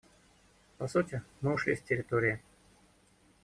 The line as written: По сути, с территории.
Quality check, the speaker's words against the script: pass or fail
fail